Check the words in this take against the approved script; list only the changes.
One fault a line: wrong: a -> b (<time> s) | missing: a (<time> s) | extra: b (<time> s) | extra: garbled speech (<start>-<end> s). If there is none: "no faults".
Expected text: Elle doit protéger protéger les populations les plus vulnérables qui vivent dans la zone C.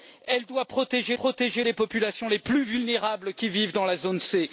no faults